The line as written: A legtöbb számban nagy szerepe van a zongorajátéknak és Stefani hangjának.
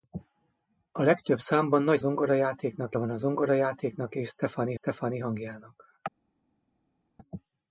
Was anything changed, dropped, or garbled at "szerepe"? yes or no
yes